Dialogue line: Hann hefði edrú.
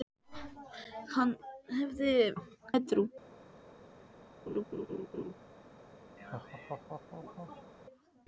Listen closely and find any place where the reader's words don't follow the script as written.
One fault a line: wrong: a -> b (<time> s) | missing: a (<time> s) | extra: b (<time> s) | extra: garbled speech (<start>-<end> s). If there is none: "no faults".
no faults